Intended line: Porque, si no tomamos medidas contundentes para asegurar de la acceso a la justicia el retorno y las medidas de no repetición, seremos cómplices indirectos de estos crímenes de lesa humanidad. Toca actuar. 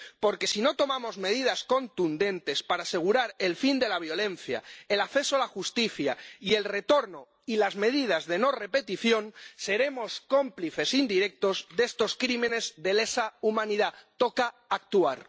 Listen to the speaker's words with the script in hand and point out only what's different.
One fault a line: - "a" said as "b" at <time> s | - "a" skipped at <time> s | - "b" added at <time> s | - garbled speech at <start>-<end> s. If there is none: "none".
- "el fin" added at 3.4 s
- "violencia el" added at 4.0 s
- "y" added at 6.4 s